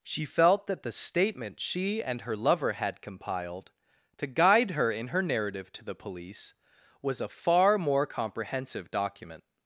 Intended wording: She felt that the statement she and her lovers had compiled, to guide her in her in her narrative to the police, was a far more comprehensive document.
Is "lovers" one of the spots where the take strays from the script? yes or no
yes